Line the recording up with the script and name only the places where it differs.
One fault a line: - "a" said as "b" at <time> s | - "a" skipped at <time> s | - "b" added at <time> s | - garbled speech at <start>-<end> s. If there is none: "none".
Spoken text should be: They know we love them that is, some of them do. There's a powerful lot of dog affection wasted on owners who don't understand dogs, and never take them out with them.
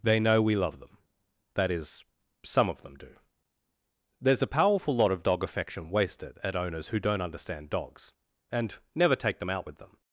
- "on" said as "at" at 6.4 s